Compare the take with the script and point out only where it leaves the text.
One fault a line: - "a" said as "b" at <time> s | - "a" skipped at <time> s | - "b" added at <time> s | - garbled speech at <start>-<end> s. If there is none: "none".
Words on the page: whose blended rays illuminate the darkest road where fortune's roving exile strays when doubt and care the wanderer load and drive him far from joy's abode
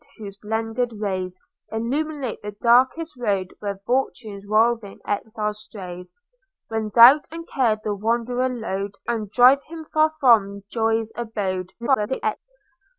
- garbled speech at 11.8-12.4 s